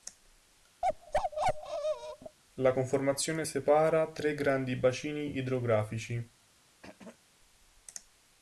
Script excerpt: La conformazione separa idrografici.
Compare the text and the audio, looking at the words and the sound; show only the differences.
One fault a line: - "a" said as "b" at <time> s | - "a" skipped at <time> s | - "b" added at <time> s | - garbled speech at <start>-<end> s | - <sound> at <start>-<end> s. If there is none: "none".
- bark at 0.8-2.4 s
- "tre grandi bacini" added at 4.1 s
- throat clearing at 6.8-7.2 s